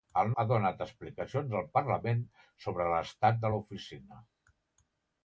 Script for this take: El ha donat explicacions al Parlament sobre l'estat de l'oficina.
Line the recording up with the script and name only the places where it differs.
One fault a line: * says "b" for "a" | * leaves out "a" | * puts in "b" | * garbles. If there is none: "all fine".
all fine